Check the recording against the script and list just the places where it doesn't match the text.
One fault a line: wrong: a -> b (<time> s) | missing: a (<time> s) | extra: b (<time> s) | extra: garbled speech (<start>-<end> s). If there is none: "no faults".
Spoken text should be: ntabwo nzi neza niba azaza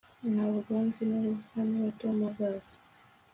extra: tom (2.0 s)